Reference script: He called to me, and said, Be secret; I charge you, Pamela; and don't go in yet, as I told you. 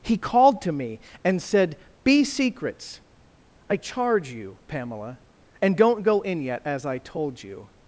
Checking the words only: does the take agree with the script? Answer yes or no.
no